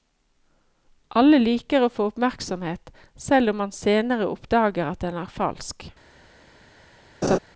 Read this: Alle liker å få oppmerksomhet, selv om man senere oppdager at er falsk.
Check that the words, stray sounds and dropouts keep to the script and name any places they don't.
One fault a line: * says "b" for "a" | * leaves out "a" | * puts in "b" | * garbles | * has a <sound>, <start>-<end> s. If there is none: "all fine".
* puts in "den"
* has a laugh, 7.2-7.4 s